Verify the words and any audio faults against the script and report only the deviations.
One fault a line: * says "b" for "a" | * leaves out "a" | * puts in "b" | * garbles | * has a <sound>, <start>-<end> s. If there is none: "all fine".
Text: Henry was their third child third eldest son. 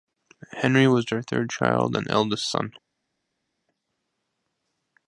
* says "and" for "third"